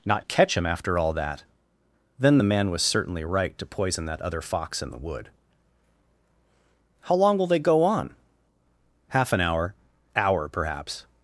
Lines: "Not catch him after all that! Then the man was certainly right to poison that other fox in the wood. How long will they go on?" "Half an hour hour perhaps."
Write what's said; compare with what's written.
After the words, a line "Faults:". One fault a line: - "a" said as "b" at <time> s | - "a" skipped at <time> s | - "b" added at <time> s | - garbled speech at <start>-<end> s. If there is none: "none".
"Not catch him after all that! Then the man was certainly right to poison that other fox in the wood. How long will they go on?" "Half an hour hour perhaps."
Faults:
none